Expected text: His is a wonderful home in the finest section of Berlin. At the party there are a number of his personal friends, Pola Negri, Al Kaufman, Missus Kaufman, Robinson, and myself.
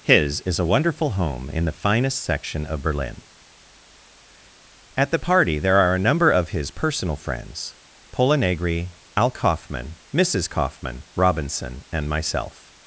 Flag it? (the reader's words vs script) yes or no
no